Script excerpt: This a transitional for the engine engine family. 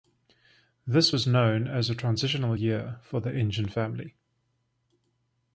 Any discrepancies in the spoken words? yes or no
yes